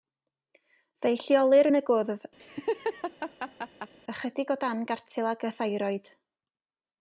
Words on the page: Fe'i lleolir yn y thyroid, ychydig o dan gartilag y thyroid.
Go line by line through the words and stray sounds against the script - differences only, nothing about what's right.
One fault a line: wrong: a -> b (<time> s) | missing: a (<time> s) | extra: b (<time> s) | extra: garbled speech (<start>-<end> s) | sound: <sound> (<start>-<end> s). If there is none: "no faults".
wrong: thyroid -> gwddf (1.9 s)
sound: laugh (2.4-3.9 s)